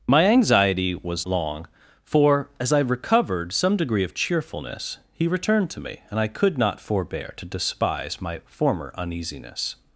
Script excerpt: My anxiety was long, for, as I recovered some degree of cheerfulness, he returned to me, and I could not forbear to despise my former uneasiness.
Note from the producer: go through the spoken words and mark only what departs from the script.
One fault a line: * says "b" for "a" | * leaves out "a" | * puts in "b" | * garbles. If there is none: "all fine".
all fine